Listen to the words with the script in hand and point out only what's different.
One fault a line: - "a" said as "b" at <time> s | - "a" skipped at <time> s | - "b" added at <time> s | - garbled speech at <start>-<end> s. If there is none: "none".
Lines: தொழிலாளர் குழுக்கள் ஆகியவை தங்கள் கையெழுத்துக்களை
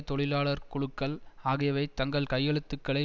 none